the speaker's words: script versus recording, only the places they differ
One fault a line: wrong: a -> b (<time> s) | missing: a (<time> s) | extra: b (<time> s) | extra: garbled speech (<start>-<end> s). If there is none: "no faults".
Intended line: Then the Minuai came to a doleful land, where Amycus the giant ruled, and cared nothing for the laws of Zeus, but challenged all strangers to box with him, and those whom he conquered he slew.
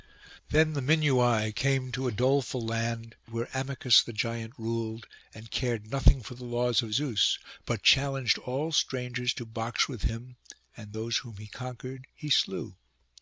no faults